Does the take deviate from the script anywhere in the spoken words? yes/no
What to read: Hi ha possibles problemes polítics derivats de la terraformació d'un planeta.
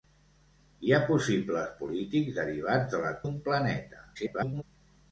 yes